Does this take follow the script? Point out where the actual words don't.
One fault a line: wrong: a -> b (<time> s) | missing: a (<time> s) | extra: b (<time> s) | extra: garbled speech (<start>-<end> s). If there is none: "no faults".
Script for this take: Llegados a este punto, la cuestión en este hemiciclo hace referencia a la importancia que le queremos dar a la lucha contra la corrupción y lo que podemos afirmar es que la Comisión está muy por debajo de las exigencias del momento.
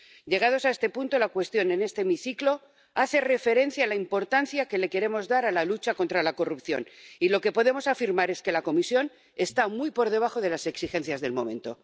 no faults